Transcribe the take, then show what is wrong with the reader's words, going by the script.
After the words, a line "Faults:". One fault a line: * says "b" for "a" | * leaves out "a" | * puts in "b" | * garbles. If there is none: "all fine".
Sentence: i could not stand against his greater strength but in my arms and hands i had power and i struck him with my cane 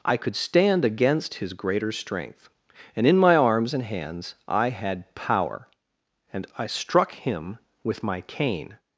i could stand against his greater strength and in my arms and hands i had power and i struck him with my cane
Faults:
* leaves out "not"
* says "and" for "but"